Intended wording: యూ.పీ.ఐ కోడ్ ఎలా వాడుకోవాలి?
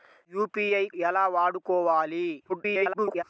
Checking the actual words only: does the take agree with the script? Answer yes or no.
no